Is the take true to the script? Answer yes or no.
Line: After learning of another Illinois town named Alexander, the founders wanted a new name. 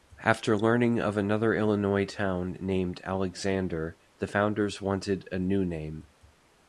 yes